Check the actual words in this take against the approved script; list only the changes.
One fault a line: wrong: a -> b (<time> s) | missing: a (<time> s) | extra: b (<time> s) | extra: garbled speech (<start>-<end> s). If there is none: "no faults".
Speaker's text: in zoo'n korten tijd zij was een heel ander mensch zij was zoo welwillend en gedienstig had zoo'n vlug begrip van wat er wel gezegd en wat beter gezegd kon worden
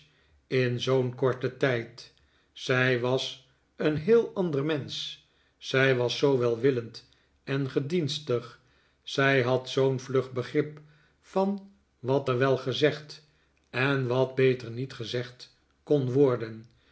extra: zij (9.0 s)
extra: niet (14.7 s)